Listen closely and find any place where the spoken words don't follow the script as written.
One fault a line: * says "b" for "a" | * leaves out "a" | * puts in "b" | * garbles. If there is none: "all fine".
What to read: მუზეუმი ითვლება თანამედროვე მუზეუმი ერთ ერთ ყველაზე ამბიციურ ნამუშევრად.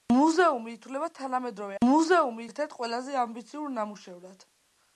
all fine